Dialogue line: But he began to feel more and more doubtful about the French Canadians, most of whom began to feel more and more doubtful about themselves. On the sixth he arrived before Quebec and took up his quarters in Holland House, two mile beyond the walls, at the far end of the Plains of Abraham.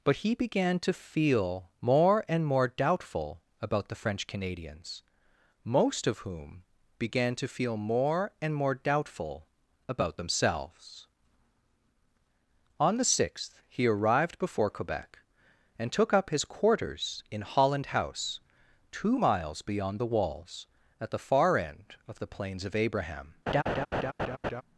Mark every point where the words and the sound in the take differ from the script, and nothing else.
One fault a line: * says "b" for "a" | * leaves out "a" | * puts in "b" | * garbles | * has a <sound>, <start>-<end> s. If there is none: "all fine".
* says "miles" for "mile"
* has a laugh, 23.5-24.6 s